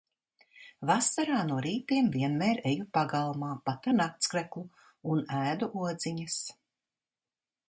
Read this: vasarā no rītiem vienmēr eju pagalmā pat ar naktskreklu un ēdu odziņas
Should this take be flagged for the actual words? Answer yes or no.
no